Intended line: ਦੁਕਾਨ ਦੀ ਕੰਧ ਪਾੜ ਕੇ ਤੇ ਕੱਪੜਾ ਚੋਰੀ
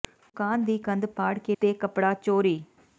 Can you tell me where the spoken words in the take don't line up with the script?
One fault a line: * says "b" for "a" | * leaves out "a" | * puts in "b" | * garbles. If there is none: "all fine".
all fine